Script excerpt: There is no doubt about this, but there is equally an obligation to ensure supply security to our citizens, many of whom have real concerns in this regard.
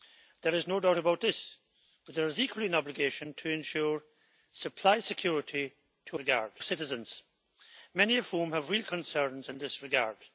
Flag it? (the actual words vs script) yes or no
yes